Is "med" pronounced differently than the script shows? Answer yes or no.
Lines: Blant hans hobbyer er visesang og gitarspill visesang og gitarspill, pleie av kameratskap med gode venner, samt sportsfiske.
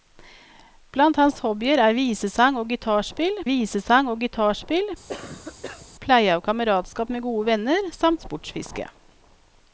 no